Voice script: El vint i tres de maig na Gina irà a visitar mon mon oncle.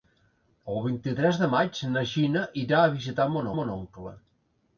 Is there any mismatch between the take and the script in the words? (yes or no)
no